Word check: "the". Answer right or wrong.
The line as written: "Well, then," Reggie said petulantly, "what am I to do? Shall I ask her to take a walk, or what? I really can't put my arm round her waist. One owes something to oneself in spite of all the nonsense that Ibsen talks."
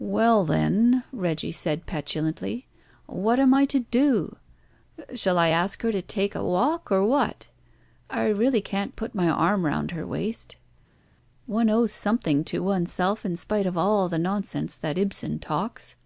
right